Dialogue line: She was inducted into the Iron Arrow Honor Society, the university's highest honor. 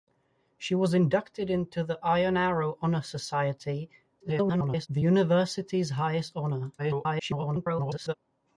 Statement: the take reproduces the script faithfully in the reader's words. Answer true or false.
false